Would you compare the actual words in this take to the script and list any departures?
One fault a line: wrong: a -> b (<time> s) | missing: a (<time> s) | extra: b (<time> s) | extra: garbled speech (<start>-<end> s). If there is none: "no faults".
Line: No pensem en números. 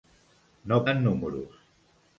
missing: pensem (0.8 s)